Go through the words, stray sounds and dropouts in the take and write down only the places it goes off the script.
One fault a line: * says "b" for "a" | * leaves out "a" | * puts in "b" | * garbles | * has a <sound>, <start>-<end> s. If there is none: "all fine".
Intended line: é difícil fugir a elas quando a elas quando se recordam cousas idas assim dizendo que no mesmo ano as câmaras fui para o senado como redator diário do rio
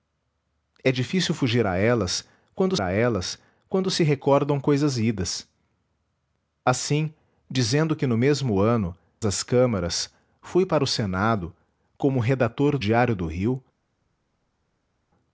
all fine